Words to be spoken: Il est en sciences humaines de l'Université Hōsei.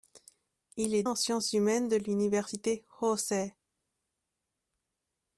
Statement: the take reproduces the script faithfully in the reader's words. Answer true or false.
true